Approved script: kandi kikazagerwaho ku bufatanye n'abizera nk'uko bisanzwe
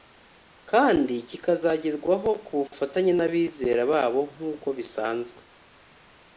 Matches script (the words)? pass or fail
fail